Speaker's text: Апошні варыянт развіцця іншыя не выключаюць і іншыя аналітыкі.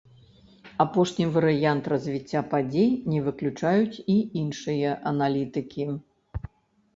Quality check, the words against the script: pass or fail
fail